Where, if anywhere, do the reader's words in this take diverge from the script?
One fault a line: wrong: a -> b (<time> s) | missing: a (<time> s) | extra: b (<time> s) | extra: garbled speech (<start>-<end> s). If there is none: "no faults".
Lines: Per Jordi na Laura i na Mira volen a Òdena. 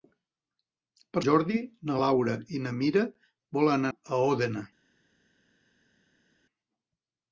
no faults